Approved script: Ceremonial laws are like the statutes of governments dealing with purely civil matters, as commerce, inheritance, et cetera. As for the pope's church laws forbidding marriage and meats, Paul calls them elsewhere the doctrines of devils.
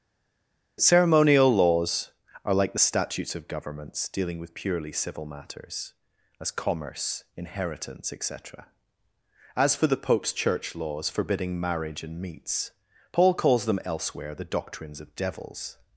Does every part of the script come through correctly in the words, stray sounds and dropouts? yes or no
yes